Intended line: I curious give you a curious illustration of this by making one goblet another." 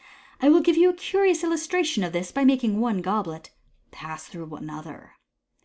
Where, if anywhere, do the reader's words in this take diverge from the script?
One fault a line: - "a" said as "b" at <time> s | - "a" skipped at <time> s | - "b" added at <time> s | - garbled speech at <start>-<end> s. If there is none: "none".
- "curious" said as "will" at 0.5 s
- "pass through" added at 3.9 s